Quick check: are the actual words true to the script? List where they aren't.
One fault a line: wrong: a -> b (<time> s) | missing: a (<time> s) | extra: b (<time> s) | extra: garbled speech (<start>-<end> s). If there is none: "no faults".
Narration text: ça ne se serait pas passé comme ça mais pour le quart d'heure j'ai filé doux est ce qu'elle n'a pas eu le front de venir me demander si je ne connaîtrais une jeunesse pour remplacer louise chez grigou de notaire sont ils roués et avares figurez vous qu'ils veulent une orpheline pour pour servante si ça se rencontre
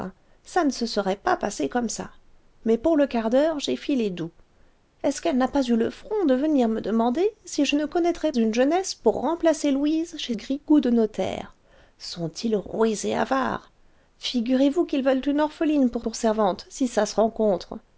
no faults